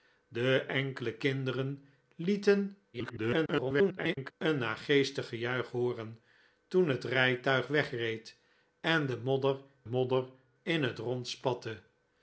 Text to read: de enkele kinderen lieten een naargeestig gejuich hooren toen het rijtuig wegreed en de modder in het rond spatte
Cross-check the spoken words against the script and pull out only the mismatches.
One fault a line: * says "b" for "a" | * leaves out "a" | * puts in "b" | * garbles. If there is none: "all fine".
* garbles
* puts in "modder"